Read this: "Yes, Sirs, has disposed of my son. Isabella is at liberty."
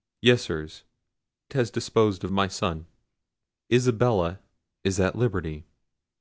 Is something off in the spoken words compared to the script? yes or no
no